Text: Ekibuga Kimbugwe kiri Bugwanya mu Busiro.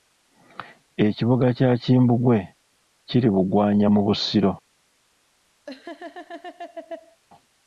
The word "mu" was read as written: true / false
true